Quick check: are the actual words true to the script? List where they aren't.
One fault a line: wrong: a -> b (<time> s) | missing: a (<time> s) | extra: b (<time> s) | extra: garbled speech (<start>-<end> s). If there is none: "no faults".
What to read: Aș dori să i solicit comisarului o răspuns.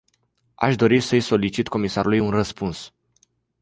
wrong: o -> un (2.2 s)